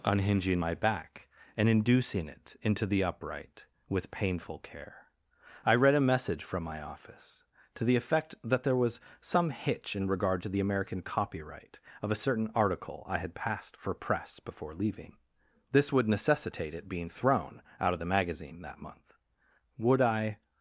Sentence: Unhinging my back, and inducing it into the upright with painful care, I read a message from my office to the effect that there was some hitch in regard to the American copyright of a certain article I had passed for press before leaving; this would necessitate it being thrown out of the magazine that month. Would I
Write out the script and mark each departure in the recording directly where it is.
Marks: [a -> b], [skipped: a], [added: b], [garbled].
Unhinging my back, and inducing it into the upright with painful care, I read a message from my office to the effect that there was some hitch in regard to the American copyright of a certain article I had passed for press before leaving; this would necessitate it being thrown out of the magazine that month. Would I